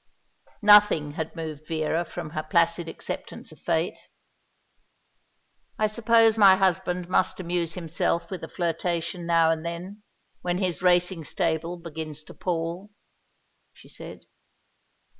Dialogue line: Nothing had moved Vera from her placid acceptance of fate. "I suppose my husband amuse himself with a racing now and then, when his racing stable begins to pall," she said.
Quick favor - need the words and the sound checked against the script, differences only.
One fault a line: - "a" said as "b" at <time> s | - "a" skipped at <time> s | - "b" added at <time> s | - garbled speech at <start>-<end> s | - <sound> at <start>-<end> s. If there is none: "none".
- "must" added at 7.1 s
- "racing" said as "flirtation" at 8.5 s